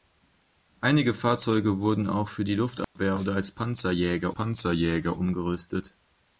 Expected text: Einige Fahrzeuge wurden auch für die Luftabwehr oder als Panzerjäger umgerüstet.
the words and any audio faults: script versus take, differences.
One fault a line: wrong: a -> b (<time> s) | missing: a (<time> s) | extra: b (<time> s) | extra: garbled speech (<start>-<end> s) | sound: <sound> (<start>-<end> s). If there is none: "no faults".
sound: dropout (2.8-3.0 s)
extra: Panzerjäger (4.3 s)